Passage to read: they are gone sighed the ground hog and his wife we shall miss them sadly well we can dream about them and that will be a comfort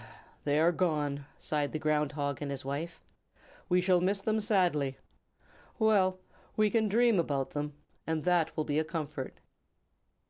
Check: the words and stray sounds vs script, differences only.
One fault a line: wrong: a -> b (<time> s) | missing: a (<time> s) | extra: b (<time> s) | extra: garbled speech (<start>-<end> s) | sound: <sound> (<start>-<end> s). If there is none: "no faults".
no faults